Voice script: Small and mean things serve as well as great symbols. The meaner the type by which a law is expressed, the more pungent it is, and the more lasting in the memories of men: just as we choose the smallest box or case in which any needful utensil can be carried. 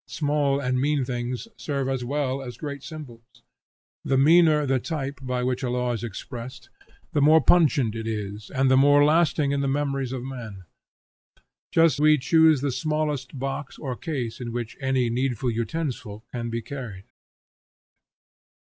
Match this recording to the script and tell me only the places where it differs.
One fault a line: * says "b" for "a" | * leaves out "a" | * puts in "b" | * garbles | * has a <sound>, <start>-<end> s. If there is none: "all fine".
* leaves out "as"